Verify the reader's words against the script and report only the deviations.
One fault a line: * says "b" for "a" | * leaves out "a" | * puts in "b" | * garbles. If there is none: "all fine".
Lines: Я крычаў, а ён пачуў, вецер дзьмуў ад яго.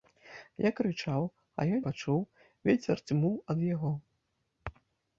all fine